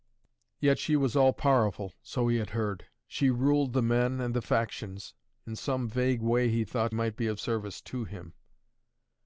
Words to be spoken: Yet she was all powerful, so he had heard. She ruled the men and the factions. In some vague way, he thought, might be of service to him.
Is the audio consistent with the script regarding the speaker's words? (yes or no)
yes